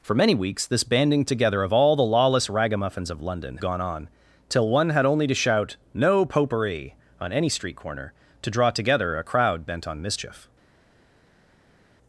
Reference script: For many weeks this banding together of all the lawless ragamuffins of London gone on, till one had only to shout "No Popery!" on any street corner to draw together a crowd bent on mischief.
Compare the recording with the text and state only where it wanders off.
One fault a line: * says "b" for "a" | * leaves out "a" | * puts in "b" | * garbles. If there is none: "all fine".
all fine